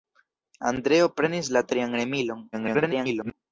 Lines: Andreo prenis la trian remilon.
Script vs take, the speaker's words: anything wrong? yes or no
yes